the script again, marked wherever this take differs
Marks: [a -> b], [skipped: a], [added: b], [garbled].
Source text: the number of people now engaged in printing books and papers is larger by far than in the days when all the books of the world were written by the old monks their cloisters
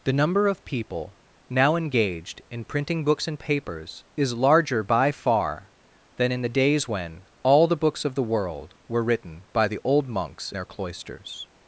the number of people now engaged in printing books and papers is larger by far than in the days when all the books of the world were written by the old monks their cloisters